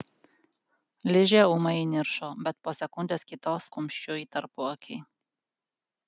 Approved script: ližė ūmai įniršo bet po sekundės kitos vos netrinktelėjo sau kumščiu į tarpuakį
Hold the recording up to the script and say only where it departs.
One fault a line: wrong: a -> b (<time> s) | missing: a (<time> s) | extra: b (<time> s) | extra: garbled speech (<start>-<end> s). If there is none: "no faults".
missing: vos netrinktelėjo sau (3.7 s)